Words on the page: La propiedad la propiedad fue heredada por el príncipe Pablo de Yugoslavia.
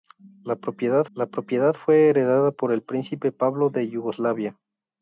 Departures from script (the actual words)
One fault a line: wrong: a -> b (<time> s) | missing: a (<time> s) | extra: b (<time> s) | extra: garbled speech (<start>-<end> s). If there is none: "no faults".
no faults